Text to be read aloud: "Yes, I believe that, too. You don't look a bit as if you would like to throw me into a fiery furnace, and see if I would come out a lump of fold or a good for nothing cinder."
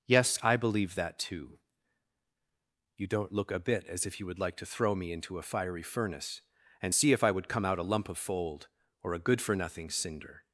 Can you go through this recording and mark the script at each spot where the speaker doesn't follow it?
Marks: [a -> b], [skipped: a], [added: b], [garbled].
"Yes, I believe that, too. You don't look a bit as if you would like to throw me into a fiery furnace, and see if I would come out a lump of fold or a good for nothing cinder."